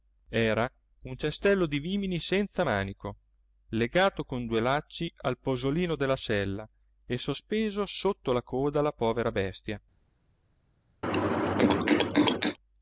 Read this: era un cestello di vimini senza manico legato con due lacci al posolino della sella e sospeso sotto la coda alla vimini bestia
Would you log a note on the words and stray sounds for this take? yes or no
yes